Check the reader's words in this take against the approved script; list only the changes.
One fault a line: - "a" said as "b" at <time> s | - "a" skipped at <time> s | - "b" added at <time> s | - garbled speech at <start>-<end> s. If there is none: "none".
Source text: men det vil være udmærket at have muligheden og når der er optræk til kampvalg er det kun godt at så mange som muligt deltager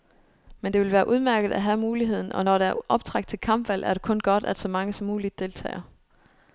none